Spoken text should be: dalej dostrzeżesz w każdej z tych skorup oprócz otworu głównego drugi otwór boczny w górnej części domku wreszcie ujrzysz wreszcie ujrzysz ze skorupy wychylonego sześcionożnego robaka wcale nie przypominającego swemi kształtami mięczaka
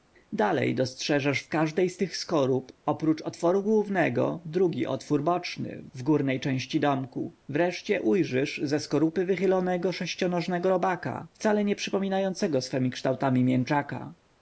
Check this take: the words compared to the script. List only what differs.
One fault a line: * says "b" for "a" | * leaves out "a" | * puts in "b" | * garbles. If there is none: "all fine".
* leaves out "wreszcie ujrzysz"